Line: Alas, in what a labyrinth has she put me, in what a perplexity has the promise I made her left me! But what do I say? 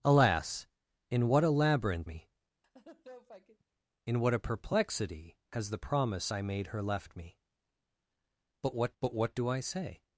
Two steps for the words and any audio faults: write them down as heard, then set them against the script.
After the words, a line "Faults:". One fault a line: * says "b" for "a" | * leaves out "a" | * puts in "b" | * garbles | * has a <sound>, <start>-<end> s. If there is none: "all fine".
Alas, in what a labyrinth me, in what a perplexity has the promise I made her left me! But what but what do I say?
Faults:
* leaves out "has she put"
* has a laugh, 2.6-3.6 s
* puts in "but what"